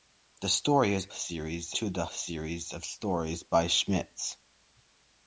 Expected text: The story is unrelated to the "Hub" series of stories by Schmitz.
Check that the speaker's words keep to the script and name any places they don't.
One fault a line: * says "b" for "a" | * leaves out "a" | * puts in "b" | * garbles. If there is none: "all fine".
* says "series" for "unrelated"
* leaves out "Hub"